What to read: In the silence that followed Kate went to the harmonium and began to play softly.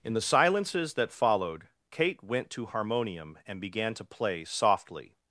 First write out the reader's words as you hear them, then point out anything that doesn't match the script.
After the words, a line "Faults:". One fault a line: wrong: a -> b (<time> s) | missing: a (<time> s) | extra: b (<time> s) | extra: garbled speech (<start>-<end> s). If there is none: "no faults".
In the silences that followed Kate went to harmonium and began to play softly.
Faults:
wrong: silence -> silences (0.2 s)
missing: the (2.6 s)